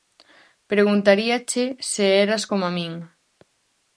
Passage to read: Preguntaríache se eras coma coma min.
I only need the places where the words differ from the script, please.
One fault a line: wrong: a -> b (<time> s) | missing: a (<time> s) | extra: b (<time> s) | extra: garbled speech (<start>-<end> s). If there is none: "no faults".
missing: coma (2.7 s)